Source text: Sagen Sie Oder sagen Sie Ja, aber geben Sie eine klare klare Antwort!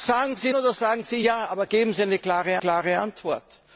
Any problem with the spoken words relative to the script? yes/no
no